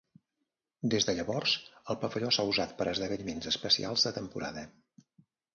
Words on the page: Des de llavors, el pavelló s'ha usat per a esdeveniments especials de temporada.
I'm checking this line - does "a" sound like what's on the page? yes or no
yes